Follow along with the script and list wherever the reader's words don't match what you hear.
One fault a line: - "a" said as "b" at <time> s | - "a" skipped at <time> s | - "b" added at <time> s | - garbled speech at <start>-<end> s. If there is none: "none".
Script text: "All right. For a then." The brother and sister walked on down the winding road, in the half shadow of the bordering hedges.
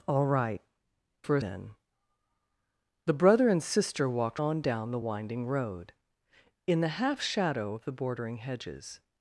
none